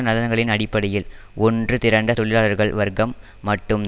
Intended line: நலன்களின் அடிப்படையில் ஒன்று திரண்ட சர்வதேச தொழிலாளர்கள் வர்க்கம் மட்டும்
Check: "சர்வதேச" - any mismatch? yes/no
yes